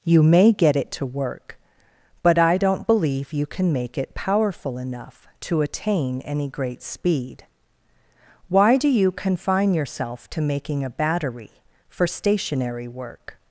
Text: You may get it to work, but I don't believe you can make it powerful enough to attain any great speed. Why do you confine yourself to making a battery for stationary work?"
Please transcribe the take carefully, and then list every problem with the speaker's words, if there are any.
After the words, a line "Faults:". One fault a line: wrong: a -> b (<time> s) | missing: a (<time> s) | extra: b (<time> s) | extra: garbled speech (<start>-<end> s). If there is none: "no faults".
You may get it to work, but I don't believe you can make it powerful enough to attain any great speed. Why do you confine yourself to making a battery for stationary work?"
Faults:
no faults